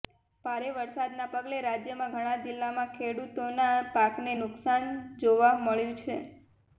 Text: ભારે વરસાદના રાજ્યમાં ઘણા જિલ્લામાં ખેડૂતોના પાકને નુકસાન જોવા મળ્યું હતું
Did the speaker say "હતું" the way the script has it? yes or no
no